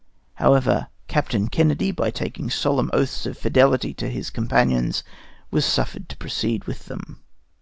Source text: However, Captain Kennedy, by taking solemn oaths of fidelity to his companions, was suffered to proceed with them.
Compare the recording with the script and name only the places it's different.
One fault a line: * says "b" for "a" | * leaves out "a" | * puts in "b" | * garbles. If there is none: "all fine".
all fine